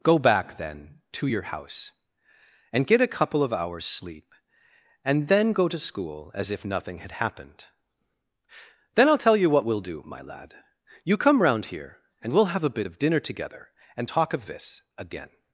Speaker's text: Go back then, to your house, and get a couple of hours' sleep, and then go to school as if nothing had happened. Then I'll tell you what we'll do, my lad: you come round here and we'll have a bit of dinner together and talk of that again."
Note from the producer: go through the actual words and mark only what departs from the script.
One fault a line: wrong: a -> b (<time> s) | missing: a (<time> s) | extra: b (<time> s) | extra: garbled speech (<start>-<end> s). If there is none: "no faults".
wrong: that -> this (14.5 s)